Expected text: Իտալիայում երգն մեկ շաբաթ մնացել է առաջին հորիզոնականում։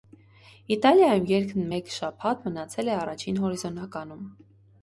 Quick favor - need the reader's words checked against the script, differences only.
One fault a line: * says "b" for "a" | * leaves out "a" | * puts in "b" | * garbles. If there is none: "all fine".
all fine